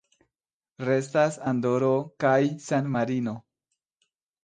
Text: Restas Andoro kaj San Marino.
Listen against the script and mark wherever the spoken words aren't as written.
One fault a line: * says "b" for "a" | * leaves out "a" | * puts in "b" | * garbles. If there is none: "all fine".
all fine